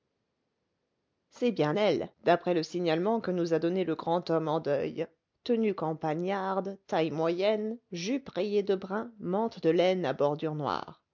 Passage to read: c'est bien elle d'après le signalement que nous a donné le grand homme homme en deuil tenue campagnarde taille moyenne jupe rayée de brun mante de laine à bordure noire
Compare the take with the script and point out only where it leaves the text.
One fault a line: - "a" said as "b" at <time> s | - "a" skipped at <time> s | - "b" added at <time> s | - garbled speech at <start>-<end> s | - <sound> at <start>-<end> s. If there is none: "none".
- "homme" skipped at 4.5 s